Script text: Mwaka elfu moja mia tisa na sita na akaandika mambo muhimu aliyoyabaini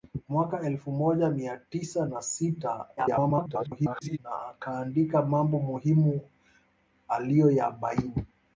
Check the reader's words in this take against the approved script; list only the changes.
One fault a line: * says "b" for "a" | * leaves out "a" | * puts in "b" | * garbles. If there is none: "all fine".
* garbles